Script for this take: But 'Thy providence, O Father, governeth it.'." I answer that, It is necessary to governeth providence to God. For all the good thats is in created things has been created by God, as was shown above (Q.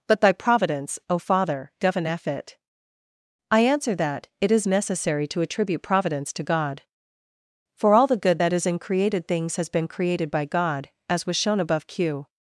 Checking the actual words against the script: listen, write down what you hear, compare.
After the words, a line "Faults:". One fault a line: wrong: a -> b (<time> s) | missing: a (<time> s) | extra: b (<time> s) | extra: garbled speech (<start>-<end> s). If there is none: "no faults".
But 'Thy providence, O Father, governeth it.'." I answer that, It is necessary to attribute providence to God. For all the good that is in created things has been created by God, as was shown above (Q.
Faults:
wrong: governeth -> attribute (5.4 s)
wrong: thats -> that (8.4 s)